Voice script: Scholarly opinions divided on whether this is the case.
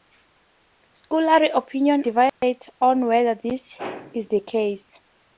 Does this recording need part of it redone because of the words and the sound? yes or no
yes